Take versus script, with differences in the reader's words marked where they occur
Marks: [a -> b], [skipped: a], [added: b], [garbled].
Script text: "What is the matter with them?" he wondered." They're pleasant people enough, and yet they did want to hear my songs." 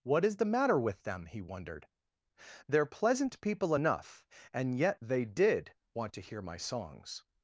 "What is the matter with them?" he wondered." They're pleasant people enough, and yet they did want to hear my songs."